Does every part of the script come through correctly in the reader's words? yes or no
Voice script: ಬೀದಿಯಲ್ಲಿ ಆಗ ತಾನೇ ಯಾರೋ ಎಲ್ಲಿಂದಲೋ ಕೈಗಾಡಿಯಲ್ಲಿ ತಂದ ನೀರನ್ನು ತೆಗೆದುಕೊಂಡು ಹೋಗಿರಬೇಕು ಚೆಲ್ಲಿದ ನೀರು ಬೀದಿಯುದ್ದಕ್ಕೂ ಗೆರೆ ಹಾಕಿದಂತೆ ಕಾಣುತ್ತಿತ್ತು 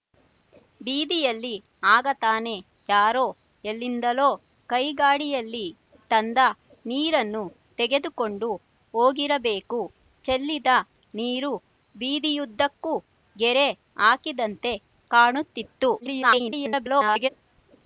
no